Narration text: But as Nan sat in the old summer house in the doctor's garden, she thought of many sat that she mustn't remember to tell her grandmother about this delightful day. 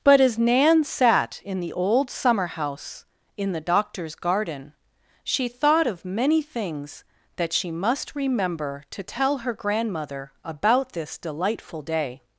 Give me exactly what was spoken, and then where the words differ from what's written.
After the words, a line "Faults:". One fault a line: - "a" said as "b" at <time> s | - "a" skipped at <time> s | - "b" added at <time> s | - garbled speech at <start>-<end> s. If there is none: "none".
But as Nan sat in the old summer house in the doctor's garden, she thought of many things that she must remember to tell her grandmother about this delightful day.
Faults:
- "sat" said as "things" at 6.4 s
- "mustn't" said as "must" at 7.7 s